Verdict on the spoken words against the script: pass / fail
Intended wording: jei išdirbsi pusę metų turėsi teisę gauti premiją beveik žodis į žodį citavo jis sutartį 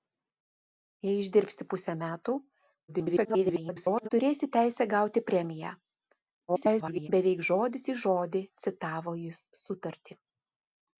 fail